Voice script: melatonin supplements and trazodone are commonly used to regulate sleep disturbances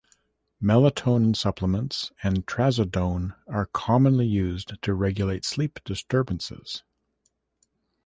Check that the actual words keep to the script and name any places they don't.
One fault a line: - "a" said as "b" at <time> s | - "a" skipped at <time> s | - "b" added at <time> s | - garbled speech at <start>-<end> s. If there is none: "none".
none